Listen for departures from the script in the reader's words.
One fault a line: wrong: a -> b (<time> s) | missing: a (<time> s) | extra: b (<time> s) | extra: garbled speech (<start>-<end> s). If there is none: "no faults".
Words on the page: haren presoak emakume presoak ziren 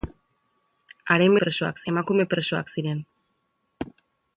no faults